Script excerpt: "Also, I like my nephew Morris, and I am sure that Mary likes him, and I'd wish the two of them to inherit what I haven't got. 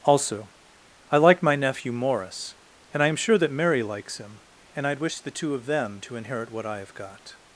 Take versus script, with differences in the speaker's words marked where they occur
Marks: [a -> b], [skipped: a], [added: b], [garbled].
"Also, I like my nephew Morris, and I am sure that Mary likes him, and I'd wish the two of them to inherit what I [haven't -> have] got.